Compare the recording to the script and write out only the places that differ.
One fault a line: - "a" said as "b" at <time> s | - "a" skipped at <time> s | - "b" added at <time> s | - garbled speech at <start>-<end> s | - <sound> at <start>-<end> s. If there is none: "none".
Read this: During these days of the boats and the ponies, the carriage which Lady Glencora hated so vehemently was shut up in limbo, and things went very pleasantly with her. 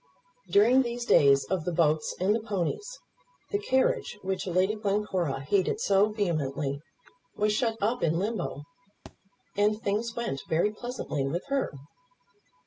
- thud at 9.1-9.2 s